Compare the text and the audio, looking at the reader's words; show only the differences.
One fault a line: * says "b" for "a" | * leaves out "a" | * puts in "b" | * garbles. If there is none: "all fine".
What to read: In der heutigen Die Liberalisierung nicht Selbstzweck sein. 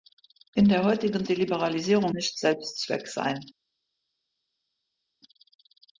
all fine